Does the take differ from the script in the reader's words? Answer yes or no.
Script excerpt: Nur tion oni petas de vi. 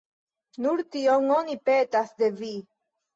no